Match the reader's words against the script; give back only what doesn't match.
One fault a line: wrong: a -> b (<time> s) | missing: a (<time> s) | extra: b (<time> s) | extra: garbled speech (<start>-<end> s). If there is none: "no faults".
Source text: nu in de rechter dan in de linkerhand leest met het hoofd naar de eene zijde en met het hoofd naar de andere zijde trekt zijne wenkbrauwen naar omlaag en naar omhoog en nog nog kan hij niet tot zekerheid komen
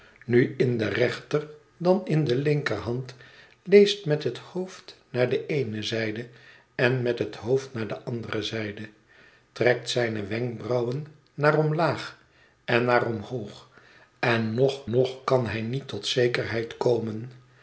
no faults